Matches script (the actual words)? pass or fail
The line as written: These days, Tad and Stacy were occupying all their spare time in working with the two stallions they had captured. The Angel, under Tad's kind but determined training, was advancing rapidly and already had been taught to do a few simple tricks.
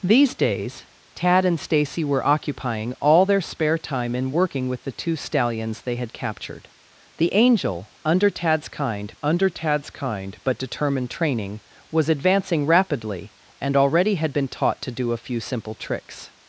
fail